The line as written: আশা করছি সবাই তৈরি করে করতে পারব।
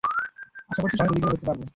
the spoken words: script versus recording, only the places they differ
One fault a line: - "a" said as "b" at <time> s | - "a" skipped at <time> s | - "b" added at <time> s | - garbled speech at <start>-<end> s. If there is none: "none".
none